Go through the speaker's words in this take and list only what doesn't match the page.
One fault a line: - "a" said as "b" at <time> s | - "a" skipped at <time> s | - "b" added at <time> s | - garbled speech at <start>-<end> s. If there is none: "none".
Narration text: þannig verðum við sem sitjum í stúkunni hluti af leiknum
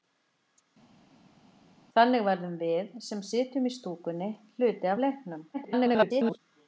- garbled speech at 5.5-6.4 s